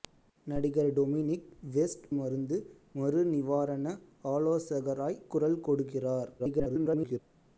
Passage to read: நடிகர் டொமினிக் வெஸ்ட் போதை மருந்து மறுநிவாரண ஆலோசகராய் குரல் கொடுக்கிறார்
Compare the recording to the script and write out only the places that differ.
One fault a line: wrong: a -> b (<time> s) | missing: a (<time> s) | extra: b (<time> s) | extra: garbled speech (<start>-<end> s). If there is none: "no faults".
missing: போதை (2.1 s)
extra: garbled speech (6.4-7.2 s)